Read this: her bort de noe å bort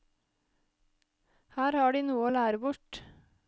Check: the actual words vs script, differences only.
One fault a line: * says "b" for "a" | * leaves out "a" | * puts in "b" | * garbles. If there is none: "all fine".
* says "har" for "bort"
* puts in "lære"